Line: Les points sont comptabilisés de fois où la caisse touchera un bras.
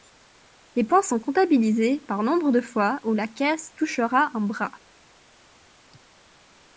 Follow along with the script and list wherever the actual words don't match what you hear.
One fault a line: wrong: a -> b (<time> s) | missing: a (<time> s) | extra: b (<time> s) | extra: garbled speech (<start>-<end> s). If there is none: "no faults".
extra: par nombre (2.1 s)